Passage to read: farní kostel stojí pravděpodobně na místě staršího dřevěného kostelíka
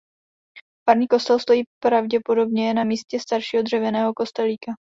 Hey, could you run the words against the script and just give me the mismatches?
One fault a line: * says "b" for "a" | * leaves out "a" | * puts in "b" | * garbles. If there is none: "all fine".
all fine